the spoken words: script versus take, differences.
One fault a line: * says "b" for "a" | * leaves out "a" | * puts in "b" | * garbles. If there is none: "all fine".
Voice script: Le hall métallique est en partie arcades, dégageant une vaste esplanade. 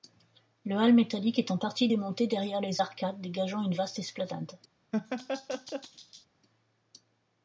* puts in "démonté derrière les"